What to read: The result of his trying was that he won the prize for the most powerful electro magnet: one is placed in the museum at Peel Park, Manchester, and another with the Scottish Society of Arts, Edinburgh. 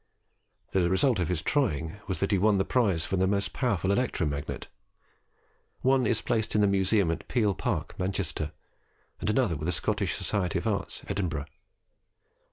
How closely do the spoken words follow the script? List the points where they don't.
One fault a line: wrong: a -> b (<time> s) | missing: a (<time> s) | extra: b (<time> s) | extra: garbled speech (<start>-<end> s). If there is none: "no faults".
no faults